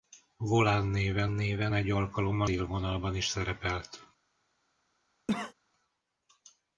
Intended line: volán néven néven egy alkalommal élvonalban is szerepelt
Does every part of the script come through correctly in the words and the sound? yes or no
no